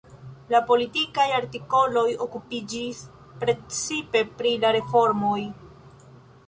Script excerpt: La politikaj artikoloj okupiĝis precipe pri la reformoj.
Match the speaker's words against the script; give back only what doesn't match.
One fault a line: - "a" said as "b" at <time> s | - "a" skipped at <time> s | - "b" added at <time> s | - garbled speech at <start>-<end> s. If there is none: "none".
none